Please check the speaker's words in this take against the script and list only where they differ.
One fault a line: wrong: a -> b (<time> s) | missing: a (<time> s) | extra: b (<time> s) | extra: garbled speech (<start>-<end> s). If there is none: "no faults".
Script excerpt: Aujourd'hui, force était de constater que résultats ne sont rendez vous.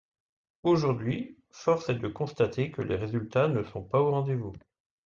wrong: était -> est (1.9 s)
extra: les (2.8 s)
extra: pas au (3.8 s)